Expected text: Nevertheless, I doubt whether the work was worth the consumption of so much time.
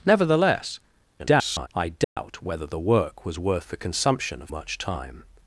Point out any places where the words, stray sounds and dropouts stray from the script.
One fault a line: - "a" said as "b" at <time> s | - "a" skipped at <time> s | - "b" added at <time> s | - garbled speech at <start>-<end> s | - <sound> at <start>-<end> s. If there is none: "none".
- garbled speech at 1.2-1.7 s
- dropout at 2.0-2.2 s
- "so" skipped at 4.5 s